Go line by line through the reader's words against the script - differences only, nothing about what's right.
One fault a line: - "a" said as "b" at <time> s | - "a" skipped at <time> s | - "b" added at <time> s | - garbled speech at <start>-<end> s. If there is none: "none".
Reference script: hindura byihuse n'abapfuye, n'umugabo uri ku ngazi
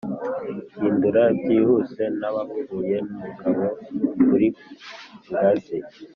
none